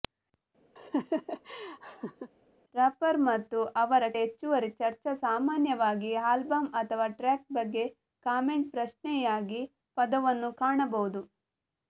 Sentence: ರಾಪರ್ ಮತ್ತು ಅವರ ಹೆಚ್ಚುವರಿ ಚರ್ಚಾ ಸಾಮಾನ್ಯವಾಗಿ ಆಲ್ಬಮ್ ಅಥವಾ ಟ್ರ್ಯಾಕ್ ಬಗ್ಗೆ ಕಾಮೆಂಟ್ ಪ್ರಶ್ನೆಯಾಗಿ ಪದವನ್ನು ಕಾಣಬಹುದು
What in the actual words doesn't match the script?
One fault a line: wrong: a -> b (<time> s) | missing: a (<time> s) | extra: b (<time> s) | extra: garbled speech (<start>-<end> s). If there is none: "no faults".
no faults